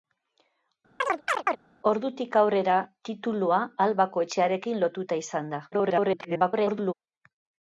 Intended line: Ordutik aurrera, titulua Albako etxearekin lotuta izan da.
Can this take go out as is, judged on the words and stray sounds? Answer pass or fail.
fail